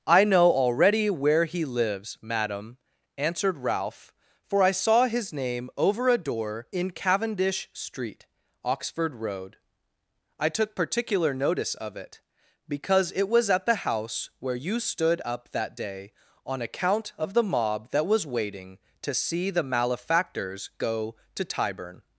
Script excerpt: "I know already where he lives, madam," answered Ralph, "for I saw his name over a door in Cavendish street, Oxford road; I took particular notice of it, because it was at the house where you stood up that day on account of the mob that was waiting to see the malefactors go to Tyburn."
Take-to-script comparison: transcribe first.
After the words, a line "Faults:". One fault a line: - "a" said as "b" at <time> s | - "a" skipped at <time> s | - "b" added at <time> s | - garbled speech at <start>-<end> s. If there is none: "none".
"I know already where he lives, madam," answered Ralph, "for I saw his name over a door in Cavendish street, Oxford road; I took particular notice of it, because it was at the house where you stood up that day on account of the mob that was waiting to see the malefactors go to Tyburn."
Faults:
none